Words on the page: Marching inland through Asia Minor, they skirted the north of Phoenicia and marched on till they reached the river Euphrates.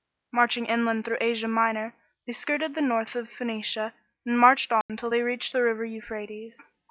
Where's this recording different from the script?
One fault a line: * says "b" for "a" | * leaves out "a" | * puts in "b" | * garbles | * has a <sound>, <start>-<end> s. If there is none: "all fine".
* has a dropout, 4.8-4.9 s